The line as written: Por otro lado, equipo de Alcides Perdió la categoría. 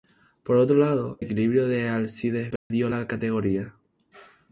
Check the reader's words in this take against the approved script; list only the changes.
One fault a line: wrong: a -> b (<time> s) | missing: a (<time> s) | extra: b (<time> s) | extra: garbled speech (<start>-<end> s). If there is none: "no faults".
no faults